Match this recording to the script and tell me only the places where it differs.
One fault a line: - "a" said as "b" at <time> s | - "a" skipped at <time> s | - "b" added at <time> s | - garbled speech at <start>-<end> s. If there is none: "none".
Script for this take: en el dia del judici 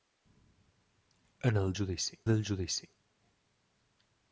- "dia" said as "judici" at 1.8 s